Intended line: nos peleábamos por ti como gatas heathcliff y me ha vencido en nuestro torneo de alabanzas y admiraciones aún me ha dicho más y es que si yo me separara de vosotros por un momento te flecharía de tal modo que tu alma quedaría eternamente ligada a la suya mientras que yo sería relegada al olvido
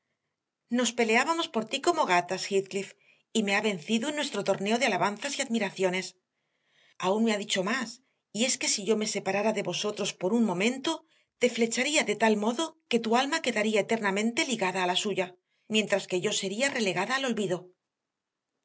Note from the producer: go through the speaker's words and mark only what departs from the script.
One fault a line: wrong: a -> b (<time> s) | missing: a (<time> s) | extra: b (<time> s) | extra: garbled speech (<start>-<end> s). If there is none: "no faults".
no faults